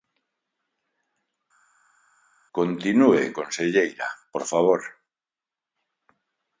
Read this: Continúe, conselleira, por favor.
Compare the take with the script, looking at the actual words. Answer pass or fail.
pass